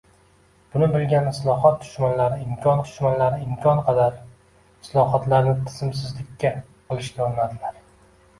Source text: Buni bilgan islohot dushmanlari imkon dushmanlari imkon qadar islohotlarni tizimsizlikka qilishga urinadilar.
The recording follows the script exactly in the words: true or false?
true